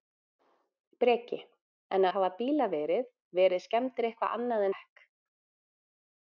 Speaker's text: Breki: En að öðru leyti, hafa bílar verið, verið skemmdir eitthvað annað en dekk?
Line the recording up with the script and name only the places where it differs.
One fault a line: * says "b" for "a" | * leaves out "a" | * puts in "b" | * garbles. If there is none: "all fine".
* leaves out "að öðru leyti"
* leaves out "en"